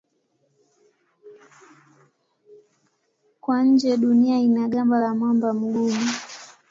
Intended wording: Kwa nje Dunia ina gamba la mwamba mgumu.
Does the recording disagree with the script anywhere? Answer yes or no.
no